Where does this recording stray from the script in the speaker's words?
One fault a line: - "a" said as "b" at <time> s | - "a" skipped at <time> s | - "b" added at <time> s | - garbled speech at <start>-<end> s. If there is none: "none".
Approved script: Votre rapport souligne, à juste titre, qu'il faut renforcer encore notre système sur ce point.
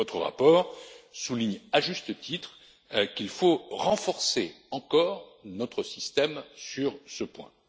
none